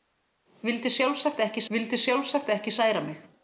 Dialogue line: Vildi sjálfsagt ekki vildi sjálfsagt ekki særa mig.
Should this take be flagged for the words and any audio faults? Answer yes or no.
no